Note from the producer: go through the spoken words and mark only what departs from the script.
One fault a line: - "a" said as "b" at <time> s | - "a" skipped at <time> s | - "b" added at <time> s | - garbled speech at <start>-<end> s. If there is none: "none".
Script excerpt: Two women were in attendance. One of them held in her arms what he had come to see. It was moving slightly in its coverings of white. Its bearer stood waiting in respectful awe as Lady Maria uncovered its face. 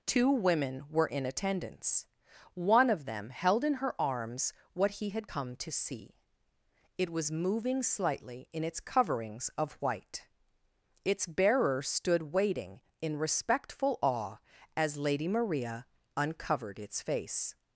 none